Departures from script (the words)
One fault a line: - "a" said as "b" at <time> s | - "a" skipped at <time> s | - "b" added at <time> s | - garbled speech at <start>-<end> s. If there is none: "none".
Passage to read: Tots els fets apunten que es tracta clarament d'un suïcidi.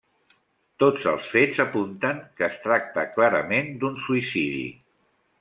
none